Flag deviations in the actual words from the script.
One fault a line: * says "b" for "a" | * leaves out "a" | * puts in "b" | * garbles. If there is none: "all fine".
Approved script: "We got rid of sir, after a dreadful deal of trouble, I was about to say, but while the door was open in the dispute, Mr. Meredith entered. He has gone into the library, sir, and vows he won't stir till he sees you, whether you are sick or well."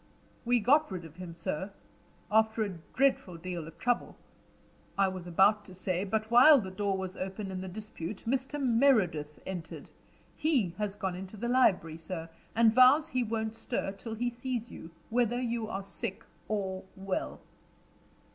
* puts in "him"